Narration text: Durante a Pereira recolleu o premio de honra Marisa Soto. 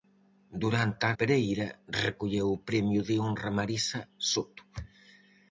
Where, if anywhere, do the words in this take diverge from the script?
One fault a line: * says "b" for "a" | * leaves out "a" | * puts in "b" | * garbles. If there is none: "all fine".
all fine